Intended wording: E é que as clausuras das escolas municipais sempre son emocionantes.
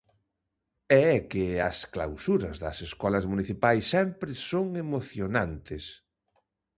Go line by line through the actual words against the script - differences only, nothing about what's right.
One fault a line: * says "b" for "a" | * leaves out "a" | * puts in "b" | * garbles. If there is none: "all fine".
all fine